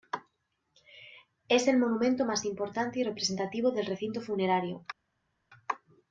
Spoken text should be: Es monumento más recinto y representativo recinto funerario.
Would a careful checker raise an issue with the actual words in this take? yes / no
yes